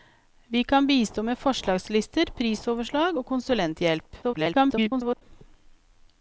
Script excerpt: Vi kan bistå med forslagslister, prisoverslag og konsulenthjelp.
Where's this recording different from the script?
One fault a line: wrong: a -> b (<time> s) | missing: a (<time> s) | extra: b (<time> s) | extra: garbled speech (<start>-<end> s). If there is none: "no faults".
extra: garbled speech (4.2-5.2 s)